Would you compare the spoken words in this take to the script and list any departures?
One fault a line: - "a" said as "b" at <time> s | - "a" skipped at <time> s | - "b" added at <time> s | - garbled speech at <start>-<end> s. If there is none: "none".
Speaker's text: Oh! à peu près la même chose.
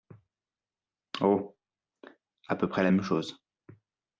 none